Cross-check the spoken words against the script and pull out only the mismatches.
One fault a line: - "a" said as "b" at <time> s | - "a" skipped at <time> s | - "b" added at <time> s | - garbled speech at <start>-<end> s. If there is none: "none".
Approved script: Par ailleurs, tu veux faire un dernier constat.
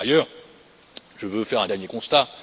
- "tu" said as "je" at 1.1 s